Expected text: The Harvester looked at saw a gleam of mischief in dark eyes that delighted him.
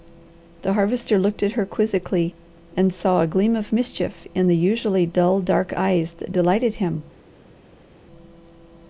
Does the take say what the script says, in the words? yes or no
no